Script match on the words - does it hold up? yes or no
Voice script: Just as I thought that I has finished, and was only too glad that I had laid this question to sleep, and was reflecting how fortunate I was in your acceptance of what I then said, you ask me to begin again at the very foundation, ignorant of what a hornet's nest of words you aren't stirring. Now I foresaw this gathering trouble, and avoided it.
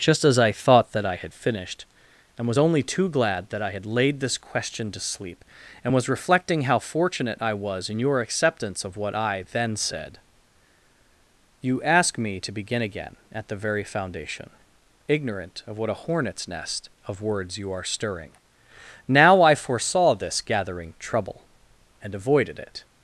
no